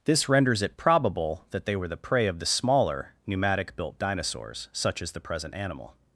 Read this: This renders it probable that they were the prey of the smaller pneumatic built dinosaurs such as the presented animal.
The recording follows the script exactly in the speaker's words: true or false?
false